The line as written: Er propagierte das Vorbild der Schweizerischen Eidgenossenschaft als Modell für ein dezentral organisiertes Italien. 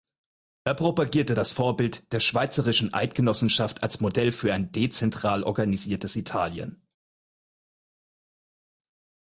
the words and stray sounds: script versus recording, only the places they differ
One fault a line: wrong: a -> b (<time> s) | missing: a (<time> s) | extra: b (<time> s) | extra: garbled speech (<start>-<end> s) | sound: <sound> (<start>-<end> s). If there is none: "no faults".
no faults